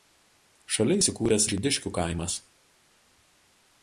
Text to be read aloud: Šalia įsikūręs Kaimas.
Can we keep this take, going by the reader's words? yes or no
no